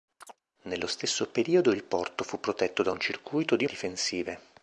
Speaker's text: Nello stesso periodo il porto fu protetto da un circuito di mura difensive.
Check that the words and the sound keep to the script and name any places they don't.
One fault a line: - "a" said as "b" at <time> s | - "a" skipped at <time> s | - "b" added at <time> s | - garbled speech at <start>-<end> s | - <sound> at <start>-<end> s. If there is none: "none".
- chirp at 0.2-0.4 s
- "mura" skipped at 3.7 s